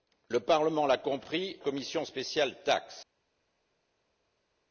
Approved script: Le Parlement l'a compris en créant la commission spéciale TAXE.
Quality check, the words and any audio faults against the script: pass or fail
fail